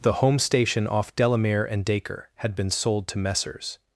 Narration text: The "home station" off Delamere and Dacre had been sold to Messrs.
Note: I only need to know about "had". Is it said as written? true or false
true